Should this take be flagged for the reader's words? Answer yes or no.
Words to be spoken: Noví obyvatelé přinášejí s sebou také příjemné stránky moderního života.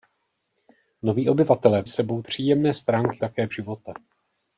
yes